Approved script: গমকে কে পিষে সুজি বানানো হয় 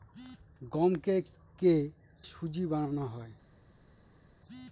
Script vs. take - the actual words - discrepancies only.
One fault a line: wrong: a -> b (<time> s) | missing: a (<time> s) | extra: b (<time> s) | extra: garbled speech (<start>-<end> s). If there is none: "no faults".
missing: পিষে (1.8 s)